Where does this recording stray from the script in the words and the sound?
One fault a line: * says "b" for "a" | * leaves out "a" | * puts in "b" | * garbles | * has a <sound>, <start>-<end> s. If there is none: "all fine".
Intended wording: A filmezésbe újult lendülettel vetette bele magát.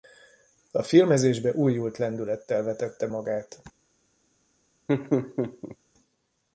* leaves out "bele"
* has a laugh, 4.9-5.8 s